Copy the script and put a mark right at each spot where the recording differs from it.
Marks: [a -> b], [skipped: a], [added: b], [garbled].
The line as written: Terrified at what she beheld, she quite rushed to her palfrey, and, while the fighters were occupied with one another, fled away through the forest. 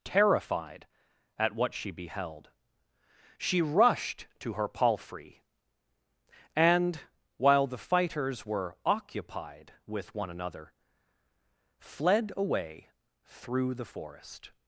Terrified at what she beheld, she [skipped: quite] rushed to her palfrey, and, while the fighters were occupied with one another, fled away through the forest.